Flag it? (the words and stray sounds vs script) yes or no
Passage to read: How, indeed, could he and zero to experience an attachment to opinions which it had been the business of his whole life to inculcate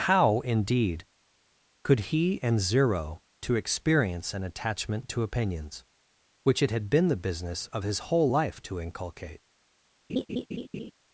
yes